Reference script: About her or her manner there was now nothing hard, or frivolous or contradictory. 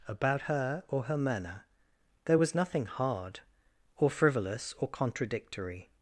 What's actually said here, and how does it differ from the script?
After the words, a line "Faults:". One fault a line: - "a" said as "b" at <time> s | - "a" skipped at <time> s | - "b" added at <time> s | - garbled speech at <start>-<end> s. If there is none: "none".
About her or her manner there was nothing hard, or frivolous or contradictory.
Faults:
- "now" skipped at 2.5 s